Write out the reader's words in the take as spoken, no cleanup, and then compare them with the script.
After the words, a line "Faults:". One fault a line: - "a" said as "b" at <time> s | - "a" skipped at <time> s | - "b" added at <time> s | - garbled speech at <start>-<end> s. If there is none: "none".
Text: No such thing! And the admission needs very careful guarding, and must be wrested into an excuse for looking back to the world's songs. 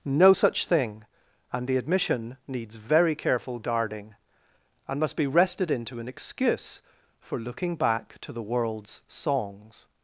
No such thing! And the admission needs very careful guarding, and must be wrested into an excuse for looking back to the world's songs.
Faults:
none